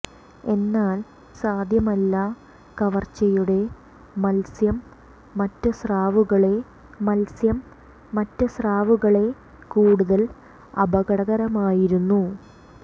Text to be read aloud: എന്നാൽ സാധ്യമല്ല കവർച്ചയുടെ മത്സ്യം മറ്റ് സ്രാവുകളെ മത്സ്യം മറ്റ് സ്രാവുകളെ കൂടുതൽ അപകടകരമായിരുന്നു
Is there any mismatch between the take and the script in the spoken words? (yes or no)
no